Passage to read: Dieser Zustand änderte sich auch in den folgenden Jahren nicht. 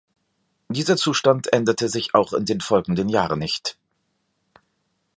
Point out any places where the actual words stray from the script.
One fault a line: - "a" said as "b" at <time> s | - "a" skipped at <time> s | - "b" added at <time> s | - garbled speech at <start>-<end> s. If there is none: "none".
none